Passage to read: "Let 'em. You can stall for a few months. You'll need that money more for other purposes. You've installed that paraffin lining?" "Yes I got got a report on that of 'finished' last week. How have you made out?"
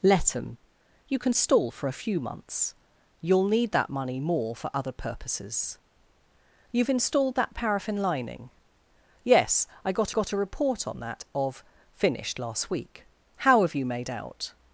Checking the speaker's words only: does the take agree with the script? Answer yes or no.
yes